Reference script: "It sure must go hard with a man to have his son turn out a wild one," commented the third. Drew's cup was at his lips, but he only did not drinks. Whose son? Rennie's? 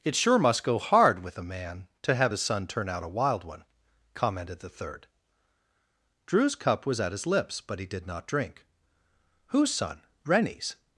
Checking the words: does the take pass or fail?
fail